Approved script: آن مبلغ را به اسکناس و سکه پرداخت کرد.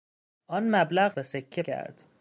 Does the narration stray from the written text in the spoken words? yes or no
yes